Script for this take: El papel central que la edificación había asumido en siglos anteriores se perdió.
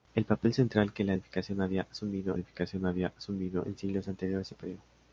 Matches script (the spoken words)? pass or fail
fail